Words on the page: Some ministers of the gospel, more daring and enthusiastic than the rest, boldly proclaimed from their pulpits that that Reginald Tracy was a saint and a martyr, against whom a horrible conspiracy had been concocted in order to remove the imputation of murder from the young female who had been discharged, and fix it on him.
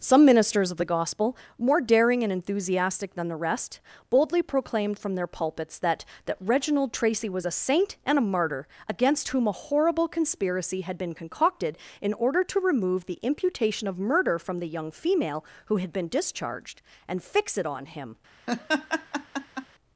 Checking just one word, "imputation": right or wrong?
right